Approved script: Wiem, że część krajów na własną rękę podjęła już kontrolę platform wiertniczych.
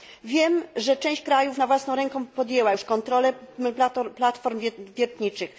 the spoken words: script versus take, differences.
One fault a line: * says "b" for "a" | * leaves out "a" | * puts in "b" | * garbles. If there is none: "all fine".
all fine